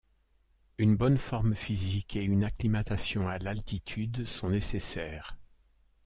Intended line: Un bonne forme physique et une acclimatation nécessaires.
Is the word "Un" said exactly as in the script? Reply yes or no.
no